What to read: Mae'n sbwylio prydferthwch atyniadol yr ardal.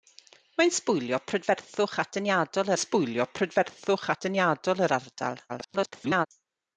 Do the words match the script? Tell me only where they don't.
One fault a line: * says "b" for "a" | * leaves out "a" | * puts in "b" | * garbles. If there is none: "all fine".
* puts in "sbwylio prydferthwch atyniadol"
* garbles